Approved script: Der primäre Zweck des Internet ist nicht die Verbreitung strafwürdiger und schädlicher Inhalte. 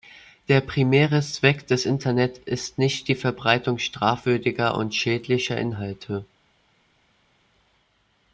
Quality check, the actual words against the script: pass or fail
pass